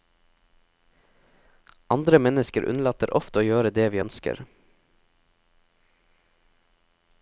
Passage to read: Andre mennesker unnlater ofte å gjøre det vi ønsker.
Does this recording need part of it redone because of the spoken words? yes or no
no